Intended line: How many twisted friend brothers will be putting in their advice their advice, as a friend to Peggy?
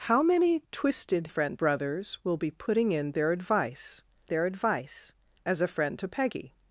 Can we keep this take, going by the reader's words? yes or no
yes